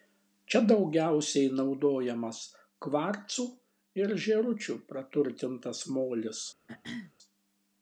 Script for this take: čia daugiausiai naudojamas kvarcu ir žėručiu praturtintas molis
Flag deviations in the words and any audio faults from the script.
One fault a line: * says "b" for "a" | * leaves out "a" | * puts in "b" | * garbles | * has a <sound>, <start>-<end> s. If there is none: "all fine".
* has a throat clearing, 6.7-7.1 s